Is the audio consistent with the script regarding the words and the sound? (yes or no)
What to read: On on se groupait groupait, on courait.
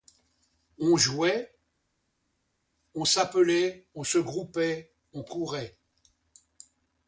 no